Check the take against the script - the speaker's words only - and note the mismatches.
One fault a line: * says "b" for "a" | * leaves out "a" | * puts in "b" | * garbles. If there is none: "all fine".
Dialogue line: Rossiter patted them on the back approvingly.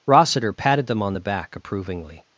all fine